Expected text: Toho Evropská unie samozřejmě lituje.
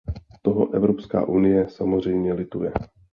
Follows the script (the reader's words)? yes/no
yes